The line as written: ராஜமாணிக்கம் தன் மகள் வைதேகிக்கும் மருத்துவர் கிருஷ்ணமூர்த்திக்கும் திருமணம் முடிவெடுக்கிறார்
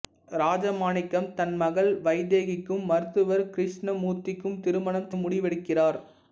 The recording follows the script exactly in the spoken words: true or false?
true